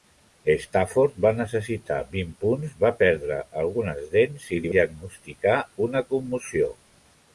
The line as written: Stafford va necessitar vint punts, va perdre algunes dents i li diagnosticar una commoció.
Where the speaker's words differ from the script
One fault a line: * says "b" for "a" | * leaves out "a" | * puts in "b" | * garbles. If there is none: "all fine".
all fine